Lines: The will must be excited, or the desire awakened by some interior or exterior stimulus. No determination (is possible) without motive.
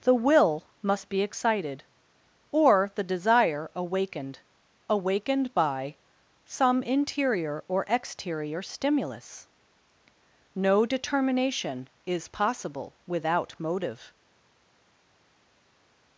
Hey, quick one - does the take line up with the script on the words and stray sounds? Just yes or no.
no